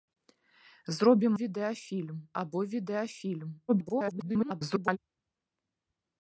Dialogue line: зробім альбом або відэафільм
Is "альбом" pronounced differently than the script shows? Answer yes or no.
yes